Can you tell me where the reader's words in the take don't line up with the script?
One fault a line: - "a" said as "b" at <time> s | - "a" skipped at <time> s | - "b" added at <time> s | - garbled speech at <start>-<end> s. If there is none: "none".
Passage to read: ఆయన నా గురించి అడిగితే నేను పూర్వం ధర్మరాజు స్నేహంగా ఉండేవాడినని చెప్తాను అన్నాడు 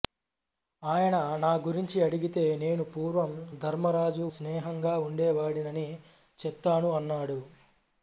none